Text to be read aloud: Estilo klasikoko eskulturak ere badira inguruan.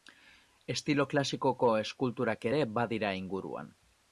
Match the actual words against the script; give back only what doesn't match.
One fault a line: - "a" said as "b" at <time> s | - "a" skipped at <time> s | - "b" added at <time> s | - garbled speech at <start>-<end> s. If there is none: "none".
none